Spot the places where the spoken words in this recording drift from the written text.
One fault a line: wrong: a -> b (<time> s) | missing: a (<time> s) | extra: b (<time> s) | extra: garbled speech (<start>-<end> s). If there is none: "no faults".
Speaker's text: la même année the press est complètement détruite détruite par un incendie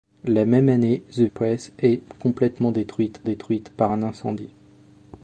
no faults